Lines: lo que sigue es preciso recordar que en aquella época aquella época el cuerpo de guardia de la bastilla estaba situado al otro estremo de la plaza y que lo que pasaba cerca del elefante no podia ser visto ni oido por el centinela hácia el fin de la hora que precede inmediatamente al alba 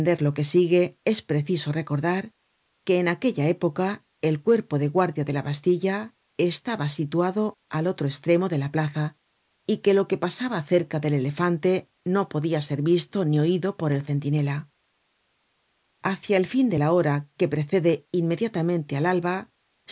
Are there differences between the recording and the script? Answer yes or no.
yes